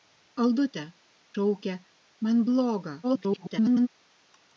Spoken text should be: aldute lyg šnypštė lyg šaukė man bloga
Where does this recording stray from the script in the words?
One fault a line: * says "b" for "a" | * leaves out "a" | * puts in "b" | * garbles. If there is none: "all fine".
* leaves out "lyg šnypštė lyg"
* garbles